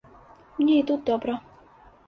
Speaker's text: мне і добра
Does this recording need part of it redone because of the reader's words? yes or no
yes